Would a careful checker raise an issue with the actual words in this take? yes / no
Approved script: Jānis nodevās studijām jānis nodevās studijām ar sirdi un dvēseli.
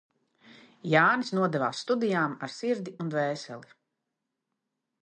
yes